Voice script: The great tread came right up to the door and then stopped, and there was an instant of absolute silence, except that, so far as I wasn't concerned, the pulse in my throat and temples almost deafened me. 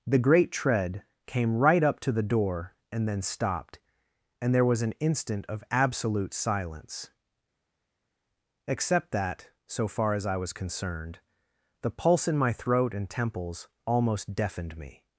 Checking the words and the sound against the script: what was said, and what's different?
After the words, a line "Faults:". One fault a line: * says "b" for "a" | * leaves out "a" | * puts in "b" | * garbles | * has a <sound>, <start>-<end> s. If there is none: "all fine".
The great tread came right up to the door and then stopped, and there was an instant of absolute silence, except that, so far as I was concerned, the pulse in my throat and temples almost deafened me.
Faults:
* says "was" for "wasn't"